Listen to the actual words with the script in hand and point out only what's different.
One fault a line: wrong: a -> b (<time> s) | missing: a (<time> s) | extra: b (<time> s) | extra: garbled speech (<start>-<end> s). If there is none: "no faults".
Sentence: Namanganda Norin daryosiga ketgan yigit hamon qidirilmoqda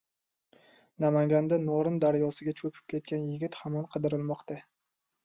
extra: cho‘kib (2.6 s)